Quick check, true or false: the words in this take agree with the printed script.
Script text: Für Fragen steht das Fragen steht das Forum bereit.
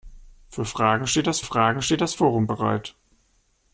true